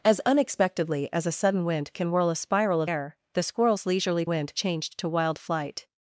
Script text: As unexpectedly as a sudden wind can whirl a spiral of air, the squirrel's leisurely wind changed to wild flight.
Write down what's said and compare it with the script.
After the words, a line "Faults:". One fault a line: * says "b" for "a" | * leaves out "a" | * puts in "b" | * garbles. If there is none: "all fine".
As unexpectedly as a sudden wind can whirl a spiral of air, the squirrel's leisurely wind changed to wild flight.
Faults:
all fine